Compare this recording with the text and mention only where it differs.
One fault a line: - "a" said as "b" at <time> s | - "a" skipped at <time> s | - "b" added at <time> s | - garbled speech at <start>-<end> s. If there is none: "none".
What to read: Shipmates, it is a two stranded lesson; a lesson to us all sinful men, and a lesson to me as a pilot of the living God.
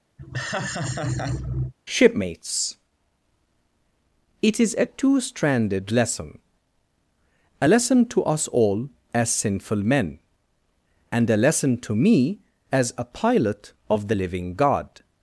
- "as" added at 9.1 s